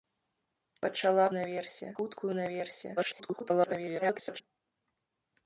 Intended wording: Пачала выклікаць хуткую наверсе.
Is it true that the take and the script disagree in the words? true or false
true